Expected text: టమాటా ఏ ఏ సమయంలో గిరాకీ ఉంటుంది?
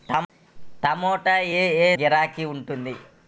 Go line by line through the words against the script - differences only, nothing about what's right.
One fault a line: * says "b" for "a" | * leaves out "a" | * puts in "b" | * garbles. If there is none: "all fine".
* leaves out "సమయంలో"